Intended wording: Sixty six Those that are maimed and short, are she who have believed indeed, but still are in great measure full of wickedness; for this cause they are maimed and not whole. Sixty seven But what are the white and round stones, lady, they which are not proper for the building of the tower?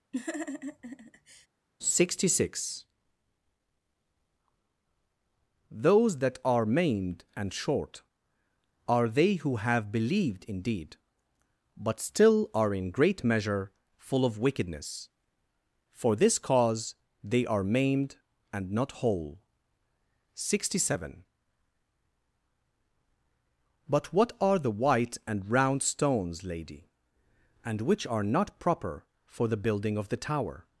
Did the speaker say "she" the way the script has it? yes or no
no